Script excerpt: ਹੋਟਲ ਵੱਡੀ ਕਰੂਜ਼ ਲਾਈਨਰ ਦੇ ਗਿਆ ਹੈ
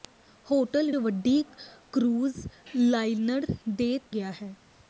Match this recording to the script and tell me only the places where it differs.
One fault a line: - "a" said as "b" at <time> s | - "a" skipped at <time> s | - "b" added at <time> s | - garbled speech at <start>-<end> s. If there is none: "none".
none